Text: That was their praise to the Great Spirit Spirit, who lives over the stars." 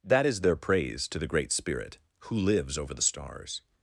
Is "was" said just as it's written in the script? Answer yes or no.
no